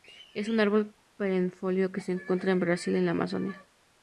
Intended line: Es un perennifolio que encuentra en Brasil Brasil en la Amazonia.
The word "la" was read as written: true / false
true